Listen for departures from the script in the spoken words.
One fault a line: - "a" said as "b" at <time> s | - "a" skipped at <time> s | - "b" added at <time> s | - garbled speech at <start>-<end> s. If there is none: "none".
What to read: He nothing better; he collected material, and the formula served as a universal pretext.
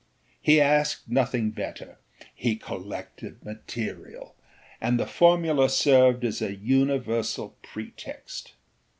- "asked" added at 0.6 s